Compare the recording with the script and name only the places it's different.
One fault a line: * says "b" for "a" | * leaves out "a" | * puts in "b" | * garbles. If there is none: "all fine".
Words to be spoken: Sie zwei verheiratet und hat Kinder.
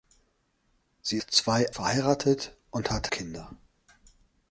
all fine